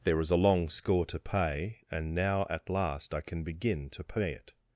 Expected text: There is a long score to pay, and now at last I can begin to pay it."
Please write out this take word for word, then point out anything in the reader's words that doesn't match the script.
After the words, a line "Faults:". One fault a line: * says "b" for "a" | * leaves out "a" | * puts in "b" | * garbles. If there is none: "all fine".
There is a long score to pay, and now at last I can begin to pay it."
Faults:
all fine